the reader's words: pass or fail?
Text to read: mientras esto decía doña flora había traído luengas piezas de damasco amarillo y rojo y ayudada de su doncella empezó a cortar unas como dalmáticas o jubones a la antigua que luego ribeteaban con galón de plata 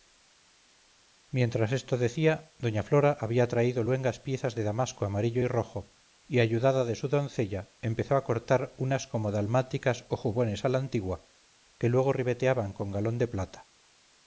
pass